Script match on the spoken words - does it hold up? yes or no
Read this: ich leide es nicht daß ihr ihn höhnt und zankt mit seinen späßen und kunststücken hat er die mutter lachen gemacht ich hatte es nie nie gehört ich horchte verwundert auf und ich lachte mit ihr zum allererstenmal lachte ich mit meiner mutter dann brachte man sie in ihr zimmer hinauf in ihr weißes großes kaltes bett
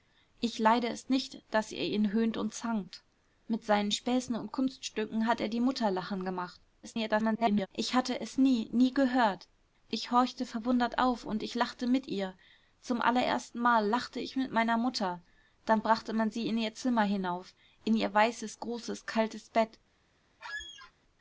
no